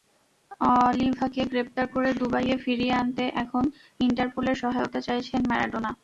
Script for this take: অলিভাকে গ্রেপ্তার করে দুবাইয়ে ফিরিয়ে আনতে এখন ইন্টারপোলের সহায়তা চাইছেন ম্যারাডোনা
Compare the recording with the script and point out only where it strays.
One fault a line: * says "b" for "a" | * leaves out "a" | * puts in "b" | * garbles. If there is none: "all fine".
all fine